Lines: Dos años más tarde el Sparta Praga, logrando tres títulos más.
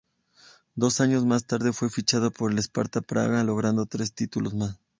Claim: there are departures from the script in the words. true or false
true